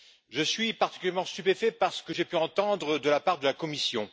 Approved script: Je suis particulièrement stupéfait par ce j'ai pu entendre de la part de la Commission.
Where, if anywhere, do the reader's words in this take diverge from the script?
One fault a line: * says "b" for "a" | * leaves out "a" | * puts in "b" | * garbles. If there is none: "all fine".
* puts in "que"